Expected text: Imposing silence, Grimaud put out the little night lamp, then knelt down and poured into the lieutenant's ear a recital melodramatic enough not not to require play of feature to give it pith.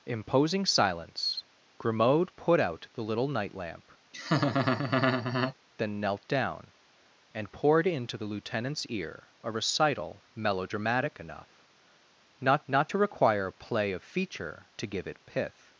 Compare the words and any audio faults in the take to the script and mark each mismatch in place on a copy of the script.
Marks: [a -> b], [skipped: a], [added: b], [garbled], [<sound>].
Imposing silence, Grimaud put out the little night lamp, [laugh] then knelt down and poured into the lieutenant's ear a recital melodramatic enough not not to require play of feature to give it pith.